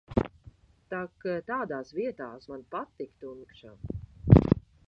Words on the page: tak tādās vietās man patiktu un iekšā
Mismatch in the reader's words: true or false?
false